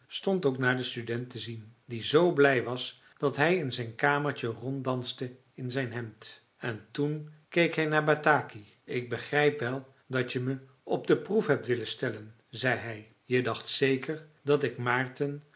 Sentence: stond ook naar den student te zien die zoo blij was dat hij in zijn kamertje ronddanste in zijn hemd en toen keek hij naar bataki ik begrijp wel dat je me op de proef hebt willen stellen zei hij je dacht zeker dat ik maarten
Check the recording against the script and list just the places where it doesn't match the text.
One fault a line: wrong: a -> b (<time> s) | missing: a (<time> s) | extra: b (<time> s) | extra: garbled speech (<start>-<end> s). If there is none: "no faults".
no faults